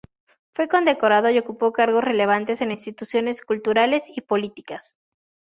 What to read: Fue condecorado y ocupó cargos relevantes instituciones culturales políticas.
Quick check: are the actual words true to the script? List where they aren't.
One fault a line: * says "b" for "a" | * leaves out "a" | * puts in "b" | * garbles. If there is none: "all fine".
* puts in "en"
* puts in "y"